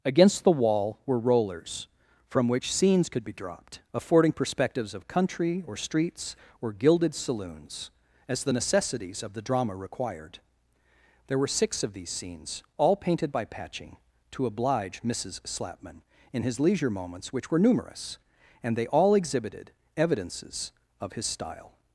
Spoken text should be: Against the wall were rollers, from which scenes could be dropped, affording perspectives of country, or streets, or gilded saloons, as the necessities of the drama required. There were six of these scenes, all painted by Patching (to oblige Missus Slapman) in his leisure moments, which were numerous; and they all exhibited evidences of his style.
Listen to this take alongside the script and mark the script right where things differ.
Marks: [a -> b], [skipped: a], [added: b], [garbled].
Against the wall were rollers, from which scenes could be dropped, affording perspectives of country, or streets, or gilded saloons, as the necessities of the drama required. There were six of these scenes, all painted by Patching (to oblige Missus Slapman) in his leisure moments, which were numerous; and they all exhibited evidences of his style.